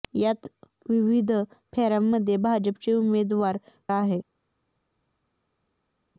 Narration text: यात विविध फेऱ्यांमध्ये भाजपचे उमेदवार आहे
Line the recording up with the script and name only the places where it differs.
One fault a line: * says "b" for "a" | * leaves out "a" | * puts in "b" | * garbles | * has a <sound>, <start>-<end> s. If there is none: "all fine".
all fine